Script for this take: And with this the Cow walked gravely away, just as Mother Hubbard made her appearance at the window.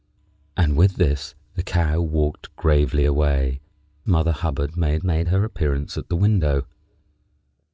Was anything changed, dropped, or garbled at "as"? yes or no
yes